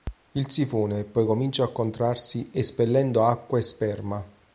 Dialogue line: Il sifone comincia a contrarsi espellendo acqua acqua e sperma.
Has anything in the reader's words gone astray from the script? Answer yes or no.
yes